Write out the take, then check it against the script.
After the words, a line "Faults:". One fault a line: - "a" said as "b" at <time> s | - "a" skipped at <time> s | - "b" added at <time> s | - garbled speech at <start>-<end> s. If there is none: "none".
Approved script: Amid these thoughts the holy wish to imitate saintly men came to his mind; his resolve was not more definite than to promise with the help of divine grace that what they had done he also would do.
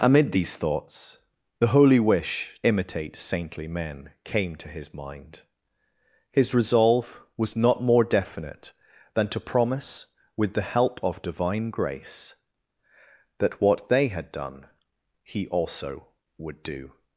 Amid these thoughts the holy wish imitate saintly men came to his mind; his resolve was not more definite than to promise with the help of divine grace that what they had done he also would do.
Faults:
- "to" skipped at 2.6 s